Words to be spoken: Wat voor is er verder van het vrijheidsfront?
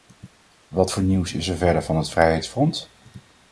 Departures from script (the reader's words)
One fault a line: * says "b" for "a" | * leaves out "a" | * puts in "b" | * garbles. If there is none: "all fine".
* puts in "nieuws"